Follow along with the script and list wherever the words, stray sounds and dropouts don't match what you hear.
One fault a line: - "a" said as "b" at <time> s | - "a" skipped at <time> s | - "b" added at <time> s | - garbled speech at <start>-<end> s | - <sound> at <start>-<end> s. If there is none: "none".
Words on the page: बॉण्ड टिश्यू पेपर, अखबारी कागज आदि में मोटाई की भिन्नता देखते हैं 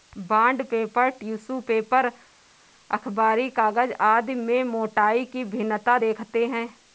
- "पेपर" added at 0.6 s